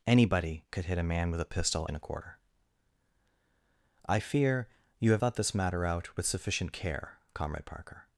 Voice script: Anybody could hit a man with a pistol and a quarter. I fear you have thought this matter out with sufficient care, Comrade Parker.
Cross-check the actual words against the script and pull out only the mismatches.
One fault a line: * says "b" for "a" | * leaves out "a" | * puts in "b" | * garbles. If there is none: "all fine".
all fine